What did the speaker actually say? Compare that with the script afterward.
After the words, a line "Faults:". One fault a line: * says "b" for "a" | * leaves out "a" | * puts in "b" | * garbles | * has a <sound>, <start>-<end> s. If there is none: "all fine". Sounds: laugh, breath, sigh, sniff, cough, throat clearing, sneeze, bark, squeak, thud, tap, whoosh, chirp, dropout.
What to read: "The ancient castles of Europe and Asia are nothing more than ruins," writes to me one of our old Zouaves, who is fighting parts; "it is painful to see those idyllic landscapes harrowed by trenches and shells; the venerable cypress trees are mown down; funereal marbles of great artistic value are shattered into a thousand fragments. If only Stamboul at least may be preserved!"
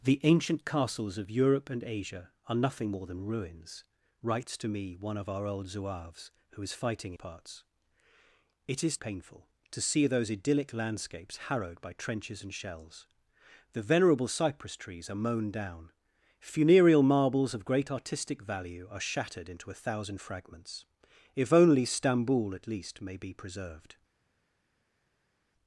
"The ancient castles of Europe and Asia are nothing more than ruins," writes to me one of our old Zouaves, who is fighting parts; "it is painful to see those idyllic landscapes harrowed by trenches and shells; the venerable cypress trees are mown down; funereal marbles of great artistic value are shattered into a thousand fragments. If only Stamboul at least may be preserved!"
Faults:
all fine